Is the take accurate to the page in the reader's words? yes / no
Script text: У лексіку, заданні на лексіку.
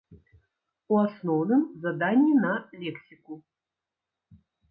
no